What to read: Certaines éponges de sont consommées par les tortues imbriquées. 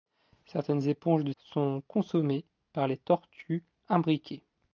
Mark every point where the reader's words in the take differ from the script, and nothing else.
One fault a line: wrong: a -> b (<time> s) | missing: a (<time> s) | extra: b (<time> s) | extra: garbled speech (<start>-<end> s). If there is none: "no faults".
no faults